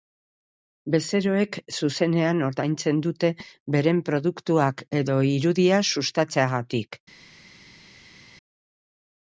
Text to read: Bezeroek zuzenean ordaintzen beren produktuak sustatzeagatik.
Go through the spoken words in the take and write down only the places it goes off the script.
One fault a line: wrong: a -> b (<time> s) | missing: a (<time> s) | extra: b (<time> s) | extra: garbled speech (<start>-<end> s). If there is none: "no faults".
extra: dute (3.1 s)
extra: edo irudia (5.0 s)